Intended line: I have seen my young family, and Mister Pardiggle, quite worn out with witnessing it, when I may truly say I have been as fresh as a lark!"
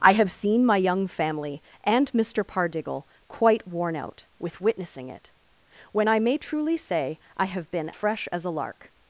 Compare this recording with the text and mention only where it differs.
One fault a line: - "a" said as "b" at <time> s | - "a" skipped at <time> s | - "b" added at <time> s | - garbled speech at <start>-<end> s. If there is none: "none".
- "as" skipped at 7.9 s